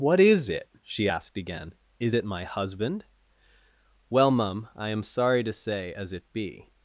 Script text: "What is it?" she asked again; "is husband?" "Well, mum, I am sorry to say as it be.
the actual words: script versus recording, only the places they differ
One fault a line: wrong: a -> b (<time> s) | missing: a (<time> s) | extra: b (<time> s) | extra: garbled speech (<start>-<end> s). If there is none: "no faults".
extra: it my (2.1 s)